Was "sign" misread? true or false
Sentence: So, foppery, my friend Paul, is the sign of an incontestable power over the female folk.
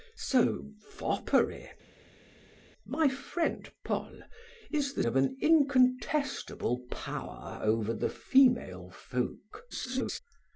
true